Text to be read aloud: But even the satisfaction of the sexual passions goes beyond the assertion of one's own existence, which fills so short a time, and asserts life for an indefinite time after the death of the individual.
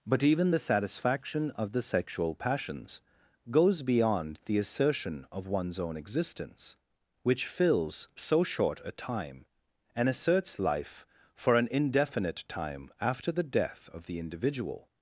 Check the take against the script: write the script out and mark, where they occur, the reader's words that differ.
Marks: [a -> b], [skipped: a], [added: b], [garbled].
But even the satisfaction of the sexual passions goes beyond the assertion of one's own existence, which fills so short a time, and asserts life for an indefinite time after the death of the individual.